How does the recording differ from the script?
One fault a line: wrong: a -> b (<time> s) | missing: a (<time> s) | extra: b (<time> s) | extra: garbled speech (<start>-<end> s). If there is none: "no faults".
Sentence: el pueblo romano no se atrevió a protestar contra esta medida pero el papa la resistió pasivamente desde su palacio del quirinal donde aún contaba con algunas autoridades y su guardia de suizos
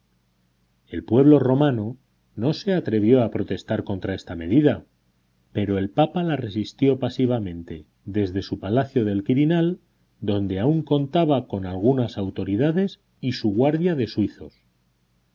no faults